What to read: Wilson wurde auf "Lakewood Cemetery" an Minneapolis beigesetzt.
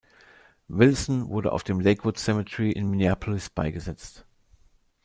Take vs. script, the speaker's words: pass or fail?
fail